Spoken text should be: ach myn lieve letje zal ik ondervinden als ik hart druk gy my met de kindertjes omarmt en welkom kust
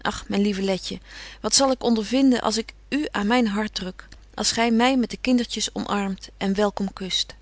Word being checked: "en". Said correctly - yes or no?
yes